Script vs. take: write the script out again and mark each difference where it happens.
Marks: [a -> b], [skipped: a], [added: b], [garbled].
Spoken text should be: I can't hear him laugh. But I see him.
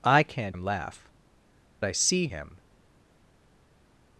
I can't [skipped: hear] him laugh. [skipped: But] I see him.